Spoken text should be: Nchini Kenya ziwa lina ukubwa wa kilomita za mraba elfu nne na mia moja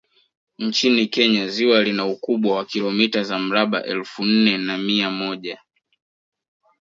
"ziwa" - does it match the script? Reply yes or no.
yes